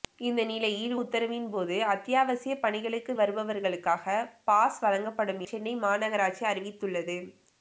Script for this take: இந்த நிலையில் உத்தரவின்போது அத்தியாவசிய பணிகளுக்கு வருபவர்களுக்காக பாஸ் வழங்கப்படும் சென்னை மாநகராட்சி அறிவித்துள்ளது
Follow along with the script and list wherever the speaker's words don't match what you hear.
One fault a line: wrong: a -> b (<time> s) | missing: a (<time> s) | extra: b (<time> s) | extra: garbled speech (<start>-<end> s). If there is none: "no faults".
no faults